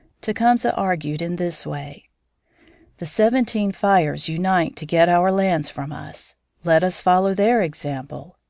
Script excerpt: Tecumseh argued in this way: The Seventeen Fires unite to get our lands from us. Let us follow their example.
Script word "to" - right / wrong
right